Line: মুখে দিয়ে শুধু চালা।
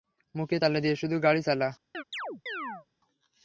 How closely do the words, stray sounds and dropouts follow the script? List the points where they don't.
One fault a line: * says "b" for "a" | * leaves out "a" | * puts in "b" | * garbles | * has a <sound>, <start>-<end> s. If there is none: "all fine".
* puts in "তালা"
* puts in "গাড়ি"
* has a chirp, 1.9-2.9 s